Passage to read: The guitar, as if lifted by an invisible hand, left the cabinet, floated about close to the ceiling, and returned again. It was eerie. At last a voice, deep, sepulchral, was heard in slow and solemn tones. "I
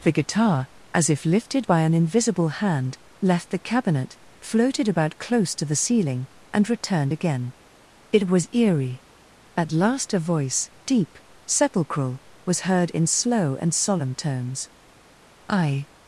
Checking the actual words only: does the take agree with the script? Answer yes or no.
yes